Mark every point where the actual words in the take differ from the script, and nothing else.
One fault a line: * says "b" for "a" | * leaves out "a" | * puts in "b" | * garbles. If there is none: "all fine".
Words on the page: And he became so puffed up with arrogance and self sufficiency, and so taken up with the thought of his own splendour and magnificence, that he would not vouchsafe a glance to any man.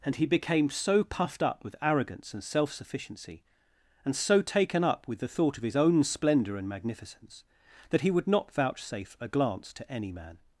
all fine